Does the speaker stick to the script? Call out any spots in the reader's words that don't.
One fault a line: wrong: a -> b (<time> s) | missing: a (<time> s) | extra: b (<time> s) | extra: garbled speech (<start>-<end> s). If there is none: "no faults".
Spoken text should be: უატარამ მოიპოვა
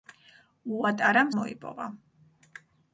no faults